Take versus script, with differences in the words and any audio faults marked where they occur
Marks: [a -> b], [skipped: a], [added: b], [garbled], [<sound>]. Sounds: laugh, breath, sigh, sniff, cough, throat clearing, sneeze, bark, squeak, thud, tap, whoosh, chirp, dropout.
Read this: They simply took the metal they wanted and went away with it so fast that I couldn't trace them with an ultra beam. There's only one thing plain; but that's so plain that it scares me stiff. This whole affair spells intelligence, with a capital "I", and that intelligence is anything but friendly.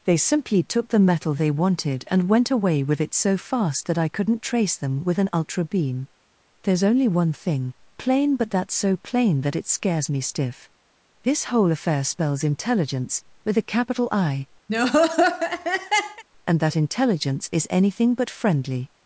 They simply took the metal they wanted and went away with it so fast that I couldn't trace them with an ultra beam. There's only one thing plain; but that's so plain that it scares me stiff. This whole affair spells intelligence, with a capital "I", [laugh] and that intelligence is anything but friendly.